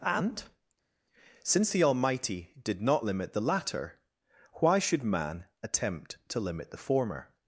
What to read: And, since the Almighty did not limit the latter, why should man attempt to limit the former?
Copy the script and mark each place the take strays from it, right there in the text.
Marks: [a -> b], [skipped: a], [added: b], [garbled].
And, since the Almighty did not limit the latter, why should man attempt to limit the former?